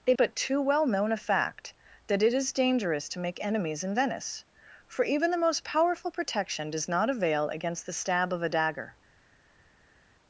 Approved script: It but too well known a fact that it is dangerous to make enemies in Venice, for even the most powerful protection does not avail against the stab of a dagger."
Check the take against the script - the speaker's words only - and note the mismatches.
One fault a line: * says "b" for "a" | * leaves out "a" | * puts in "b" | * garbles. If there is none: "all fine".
all fine